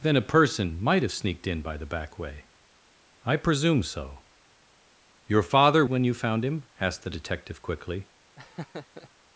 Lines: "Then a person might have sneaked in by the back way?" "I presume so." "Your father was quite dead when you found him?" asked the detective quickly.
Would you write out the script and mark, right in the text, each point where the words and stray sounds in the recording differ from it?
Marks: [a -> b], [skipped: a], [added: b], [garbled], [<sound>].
"Then a person might have sneaked in by the back way?" "I presume so." "Your father [skipped: was quite dead] when you found him?" asked the detective quickly. [laugh]